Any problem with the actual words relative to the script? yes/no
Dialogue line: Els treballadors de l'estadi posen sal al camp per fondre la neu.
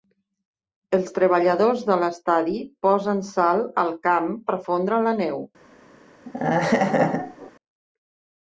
no